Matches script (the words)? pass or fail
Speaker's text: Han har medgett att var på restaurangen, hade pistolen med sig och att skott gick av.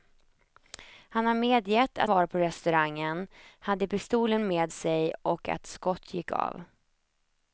pass